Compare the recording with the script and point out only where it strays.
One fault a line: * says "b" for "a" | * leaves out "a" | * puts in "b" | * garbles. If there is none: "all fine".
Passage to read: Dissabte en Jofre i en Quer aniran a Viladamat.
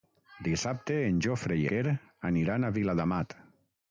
* leaves out "en"